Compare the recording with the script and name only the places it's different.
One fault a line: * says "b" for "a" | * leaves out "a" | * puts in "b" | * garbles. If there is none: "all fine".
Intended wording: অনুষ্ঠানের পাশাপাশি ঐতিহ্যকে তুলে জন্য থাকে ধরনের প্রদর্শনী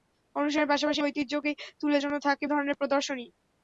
all fine